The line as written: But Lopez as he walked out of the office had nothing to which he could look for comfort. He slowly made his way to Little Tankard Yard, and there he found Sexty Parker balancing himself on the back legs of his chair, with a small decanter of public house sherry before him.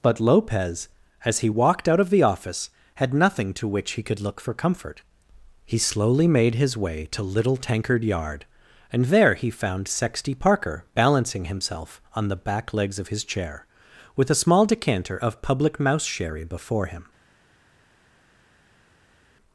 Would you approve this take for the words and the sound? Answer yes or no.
no